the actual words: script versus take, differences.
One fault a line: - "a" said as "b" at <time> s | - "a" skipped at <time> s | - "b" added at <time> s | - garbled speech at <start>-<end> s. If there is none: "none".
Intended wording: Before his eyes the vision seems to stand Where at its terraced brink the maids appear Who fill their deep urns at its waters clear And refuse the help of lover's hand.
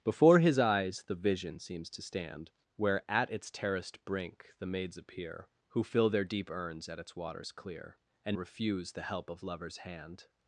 none